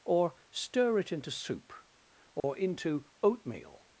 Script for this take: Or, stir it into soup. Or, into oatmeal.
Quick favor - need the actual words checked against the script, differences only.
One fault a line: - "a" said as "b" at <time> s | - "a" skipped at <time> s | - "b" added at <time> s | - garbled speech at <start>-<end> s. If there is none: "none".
none